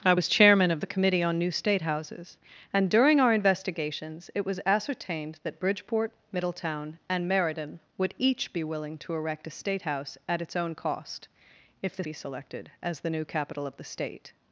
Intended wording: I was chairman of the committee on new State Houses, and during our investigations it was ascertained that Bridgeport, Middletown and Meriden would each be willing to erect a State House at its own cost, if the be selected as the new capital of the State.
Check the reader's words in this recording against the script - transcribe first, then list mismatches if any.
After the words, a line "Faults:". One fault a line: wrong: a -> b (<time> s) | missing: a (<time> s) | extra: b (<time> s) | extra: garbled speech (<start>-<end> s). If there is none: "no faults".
I was chairman of the committee on new State Houses, and during our investigations it was ascertained that Bridgeport, Middletown and Meriden would each be willing to erect a State House at its own cost, if the be selected as the new capital of the State.
Faults:
no faults